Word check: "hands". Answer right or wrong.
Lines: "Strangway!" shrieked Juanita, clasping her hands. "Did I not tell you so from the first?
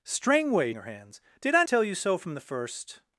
right